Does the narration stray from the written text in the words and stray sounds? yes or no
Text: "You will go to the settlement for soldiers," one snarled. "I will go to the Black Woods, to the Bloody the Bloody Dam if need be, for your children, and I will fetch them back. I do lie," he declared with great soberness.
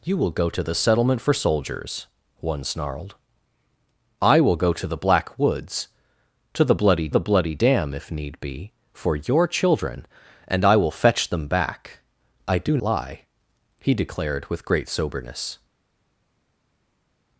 no